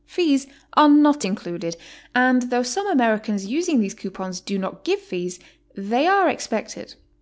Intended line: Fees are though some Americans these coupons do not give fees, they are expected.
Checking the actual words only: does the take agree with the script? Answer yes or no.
no